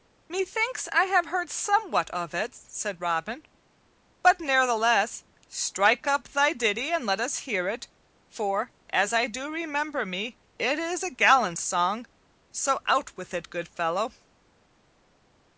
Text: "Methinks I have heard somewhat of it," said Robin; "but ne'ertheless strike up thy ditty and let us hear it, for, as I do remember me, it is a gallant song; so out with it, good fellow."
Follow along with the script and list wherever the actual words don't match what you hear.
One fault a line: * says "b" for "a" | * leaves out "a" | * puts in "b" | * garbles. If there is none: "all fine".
all fine